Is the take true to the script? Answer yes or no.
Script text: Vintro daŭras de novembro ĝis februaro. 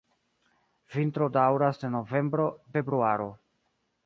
no